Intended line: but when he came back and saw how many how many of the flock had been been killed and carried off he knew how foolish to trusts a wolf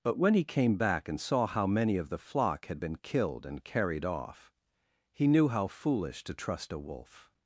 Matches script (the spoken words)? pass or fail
fail